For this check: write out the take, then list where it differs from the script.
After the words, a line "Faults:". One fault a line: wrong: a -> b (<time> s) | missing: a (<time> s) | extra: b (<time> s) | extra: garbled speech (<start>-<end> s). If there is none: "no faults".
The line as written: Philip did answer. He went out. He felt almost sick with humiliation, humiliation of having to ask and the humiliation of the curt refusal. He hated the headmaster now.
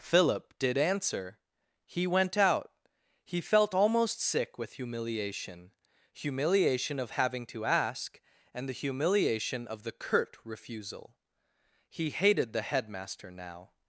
Philip did answer. He went out. He felt almost sick with humiliation, humiliation of having to ask and the humiliation of the curt refusal. He hated the headmaster now.
Faults:
no faults